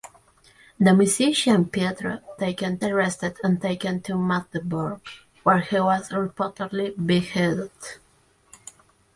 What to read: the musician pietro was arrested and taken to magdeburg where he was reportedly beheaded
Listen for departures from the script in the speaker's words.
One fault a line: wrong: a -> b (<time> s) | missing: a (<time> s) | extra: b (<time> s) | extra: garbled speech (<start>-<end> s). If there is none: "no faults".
wrong: was -> taken (2.4 s)